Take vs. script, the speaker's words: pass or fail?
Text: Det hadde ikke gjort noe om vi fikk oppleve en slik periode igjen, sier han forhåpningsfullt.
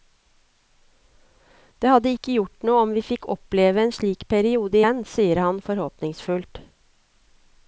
pass